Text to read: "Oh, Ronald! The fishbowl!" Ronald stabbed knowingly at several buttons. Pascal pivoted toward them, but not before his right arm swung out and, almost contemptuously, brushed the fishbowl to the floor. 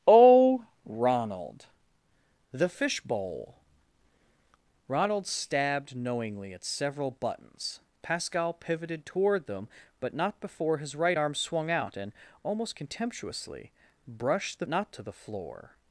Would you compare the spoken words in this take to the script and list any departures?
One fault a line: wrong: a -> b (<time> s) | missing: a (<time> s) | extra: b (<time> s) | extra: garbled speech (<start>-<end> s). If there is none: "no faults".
wrong: fishbowl -> not (14.7 s)